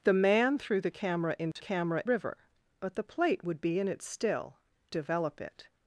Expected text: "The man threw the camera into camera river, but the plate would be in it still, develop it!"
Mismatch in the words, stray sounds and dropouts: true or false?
true